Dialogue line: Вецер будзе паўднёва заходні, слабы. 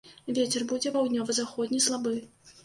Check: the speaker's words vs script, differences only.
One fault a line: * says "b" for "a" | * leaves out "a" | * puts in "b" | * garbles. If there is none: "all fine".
all fine